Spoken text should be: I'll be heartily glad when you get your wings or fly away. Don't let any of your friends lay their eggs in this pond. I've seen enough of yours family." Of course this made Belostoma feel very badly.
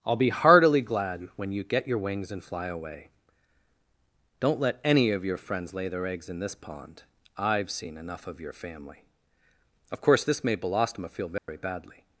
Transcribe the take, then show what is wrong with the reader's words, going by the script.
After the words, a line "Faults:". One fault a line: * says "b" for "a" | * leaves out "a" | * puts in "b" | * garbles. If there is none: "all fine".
I'll be heartily glad when you get your wings and fly away. Don't let any of your friends lay their eggs in this pond. I've seen enough of your family." Of course this made Belostoma feel very badly.
Faults:
* says "and" for "or"
* says "your" for "yours"